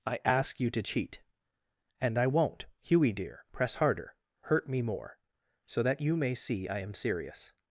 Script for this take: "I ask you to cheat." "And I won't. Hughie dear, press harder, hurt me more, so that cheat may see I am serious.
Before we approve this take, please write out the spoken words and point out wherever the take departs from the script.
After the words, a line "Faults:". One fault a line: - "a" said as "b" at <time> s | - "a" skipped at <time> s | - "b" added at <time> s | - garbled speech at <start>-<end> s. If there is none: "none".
"I ask you to cheat." "And I won't. Hughie dear, press harder, hurt me more, so that you may see I am serious.
Faults:
- "cheat" said as "you" at 6.0 s